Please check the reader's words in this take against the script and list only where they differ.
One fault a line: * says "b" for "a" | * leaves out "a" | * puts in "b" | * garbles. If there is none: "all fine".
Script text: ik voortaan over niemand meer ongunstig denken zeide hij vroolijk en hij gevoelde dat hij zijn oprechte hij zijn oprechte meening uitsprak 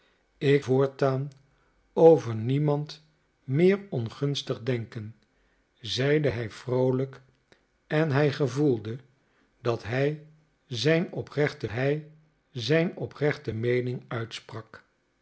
all fine